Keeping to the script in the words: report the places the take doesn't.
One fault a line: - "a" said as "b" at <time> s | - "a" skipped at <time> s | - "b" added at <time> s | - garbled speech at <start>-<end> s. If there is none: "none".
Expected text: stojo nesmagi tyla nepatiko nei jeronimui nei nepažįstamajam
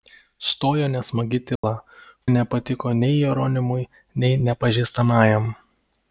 none